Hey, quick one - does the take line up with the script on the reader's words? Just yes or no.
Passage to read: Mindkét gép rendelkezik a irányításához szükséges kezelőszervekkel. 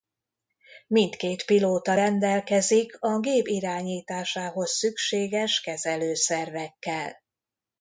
no